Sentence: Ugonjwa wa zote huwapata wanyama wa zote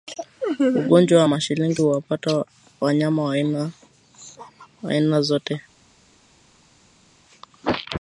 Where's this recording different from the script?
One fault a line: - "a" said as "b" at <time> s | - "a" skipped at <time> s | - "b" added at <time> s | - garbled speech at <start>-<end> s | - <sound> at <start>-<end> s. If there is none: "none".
- "zote" said as "mashilingi" at 1.2 s
- "aina" added at 4.9 s